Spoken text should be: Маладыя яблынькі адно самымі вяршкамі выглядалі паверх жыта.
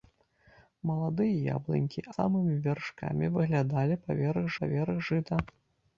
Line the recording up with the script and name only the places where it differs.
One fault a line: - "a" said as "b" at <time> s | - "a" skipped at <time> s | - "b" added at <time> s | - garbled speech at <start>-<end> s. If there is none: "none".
- "адно" skipped at 2.0 s
- "паверх" added at 4.6 s